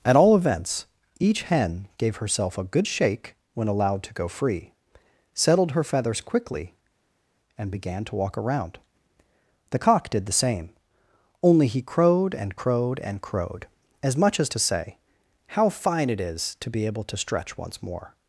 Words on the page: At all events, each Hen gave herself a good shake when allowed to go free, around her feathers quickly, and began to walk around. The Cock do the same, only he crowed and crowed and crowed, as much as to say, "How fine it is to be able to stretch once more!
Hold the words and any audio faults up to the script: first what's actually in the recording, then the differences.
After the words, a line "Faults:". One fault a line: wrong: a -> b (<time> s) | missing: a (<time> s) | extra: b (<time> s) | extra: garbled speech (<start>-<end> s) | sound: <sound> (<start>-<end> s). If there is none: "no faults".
At all events, each Hen gave herself a good shake when allowed to go free, settled her feathers quickly, and began to walk around. The Cock did the same, only he crowed and crowed and crowed, as much as to say, "How fine it is to be able to stretch once more!
Faults:
wrong: around -> settled (5.3 s)
wrong: do -> did (10.1 s)